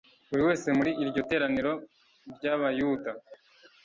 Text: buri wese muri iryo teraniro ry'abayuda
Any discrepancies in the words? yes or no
no